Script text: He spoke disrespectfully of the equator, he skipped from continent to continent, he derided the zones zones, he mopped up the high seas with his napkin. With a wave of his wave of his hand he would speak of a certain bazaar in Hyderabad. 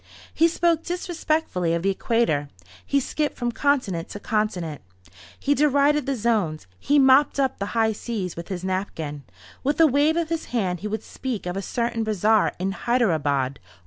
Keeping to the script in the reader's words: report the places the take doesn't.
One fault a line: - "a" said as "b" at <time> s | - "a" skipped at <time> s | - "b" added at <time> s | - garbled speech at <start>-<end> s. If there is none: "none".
- "zones" skipped at 6.7 s
- "wave of his" skipped at 10.4 s